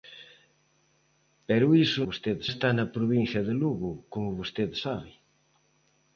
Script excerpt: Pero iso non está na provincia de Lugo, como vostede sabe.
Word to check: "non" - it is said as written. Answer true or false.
false